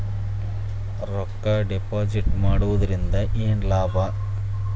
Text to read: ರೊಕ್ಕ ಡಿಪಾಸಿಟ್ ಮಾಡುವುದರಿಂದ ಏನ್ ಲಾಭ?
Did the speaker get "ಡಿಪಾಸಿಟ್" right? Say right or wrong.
right